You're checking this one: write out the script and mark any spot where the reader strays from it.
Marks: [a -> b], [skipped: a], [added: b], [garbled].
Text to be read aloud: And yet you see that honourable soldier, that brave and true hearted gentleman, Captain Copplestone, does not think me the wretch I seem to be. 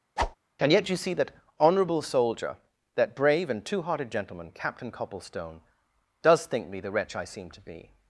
And yet you see that honourable soldier, that brave and [true -> two] hearted gentleman, Captain Copplestone, does [skipped: not] think me the wretch I seem to be.